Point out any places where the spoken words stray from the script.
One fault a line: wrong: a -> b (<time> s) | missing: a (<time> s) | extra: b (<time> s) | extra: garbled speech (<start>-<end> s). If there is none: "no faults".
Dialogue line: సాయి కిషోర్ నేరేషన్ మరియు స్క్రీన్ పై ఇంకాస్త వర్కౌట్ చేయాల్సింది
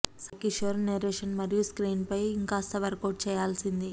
no faults